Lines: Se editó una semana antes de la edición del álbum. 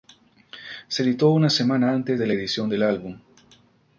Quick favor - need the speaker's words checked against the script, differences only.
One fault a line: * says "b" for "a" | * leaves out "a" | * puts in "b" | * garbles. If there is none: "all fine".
all fine